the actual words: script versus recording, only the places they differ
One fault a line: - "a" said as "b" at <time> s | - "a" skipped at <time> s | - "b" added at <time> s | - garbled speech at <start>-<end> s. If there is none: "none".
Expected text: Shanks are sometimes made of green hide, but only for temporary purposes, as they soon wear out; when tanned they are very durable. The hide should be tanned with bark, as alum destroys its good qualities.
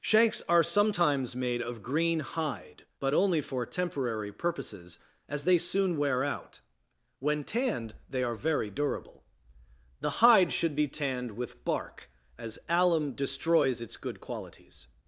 none